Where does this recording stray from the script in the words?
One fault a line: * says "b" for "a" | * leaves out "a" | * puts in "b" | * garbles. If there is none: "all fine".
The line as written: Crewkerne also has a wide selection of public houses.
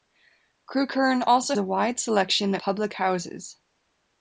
* leaves out "has"
* leaves out "of"